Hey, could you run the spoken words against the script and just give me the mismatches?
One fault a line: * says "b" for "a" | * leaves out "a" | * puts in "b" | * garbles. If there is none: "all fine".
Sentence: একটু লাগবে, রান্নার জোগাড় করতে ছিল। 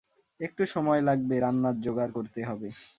* puts in "সময়"
* says "হবে" for "ছিল"